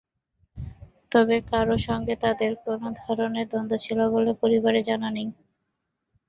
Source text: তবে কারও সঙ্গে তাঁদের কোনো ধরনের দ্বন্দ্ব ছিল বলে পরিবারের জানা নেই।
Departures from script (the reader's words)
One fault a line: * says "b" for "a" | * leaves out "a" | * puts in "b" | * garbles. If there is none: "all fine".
all fine